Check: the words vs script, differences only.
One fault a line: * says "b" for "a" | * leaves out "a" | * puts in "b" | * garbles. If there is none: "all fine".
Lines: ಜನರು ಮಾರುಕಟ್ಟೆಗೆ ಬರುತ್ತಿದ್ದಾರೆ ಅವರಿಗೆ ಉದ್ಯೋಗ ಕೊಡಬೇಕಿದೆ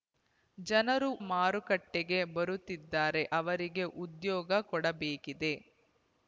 all fine